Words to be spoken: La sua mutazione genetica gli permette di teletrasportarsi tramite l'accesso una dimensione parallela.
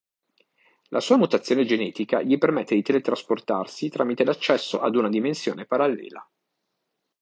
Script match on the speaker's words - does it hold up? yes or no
no